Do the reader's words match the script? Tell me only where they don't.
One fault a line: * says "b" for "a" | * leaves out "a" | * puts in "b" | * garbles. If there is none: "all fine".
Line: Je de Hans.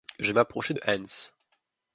* puts in "m'approchai"